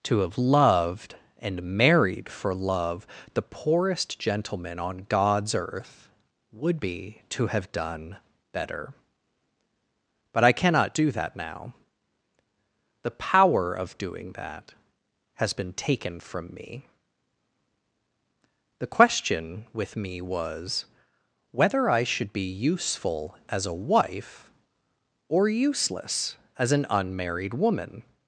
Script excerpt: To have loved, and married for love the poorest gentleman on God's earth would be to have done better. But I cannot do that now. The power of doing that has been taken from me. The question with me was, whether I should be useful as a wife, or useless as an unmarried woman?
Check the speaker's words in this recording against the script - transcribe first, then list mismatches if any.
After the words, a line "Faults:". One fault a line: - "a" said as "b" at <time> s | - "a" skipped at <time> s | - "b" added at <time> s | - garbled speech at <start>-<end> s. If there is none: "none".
To have loved, and married for love the poorest gentleman on God's earth would be to have done better. But I cannot do that now. The power of doing that has been taken from me. The question with me was, whether I should be useful as a wife, or useless as an unmarried woman?
Faults:
none